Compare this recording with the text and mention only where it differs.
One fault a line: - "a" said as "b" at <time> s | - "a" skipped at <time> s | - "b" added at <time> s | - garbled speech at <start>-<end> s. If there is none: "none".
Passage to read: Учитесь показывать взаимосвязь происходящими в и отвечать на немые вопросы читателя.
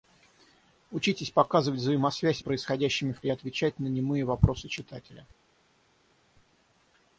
none